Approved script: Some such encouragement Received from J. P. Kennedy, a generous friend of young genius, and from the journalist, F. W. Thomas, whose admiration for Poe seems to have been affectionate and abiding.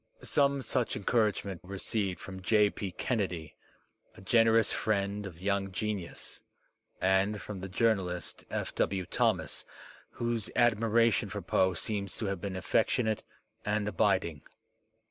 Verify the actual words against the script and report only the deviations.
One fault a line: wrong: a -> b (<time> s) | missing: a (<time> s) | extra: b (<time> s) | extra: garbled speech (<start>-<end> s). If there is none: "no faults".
no faults